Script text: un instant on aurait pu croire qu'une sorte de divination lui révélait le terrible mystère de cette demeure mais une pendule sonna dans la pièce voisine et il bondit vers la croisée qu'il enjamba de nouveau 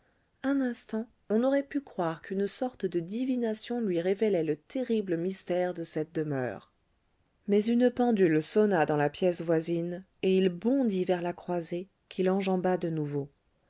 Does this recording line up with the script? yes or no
yes